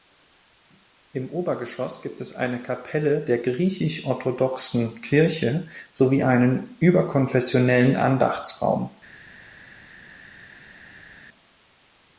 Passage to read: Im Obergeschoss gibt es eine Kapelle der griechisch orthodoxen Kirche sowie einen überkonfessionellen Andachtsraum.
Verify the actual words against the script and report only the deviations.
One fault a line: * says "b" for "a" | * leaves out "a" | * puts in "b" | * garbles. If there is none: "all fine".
all fine